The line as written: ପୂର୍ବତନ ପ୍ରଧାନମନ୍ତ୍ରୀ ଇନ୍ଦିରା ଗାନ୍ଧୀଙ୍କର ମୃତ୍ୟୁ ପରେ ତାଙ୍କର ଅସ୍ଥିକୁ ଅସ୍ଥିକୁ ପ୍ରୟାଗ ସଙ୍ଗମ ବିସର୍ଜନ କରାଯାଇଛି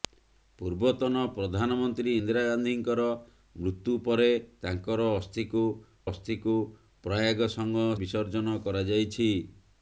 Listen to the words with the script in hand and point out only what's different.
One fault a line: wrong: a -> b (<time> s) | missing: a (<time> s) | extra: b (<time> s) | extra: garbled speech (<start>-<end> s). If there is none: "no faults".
no faults